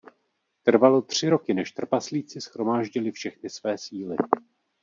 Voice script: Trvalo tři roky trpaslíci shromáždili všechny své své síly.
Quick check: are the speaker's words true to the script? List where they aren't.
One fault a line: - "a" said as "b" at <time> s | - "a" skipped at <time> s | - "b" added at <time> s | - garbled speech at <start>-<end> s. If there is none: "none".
- "než" added at 1.5 s
- "své" skipped at 3.8 s